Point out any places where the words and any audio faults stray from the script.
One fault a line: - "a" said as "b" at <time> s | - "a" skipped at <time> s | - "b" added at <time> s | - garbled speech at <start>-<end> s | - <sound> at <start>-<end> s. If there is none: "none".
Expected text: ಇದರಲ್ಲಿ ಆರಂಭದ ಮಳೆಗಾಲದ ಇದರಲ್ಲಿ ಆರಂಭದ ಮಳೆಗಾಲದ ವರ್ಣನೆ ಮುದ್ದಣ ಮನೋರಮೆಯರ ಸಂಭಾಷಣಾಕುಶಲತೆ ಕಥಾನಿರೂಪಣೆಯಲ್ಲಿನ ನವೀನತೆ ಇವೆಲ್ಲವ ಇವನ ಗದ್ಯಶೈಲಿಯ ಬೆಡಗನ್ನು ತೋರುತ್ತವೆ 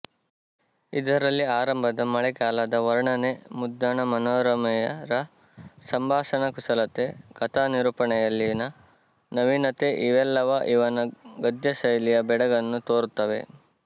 - "ಇದರಲ್ಲಿ ಆರಂಭದ ಮಳೆಗಾಲದ" skipped at 2.8 s